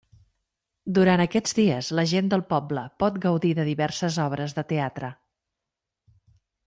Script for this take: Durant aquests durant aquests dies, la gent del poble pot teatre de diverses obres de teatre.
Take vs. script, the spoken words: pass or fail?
fail